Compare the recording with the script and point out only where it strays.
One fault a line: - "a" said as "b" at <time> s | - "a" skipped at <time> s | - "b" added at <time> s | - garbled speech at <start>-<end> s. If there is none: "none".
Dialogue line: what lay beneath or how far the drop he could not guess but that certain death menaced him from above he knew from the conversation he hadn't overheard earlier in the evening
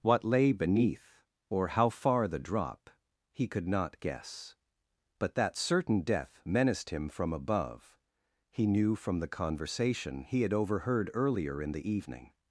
- "hadn't" said as "had" at 10.4 s